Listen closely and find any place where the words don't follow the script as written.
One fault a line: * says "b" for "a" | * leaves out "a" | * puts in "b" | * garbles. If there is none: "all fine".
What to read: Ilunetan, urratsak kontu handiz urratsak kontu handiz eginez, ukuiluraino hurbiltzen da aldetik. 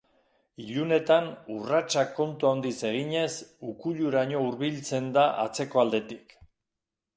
* leaves out "urratsak kontu handiz"
* puts in "atzeko"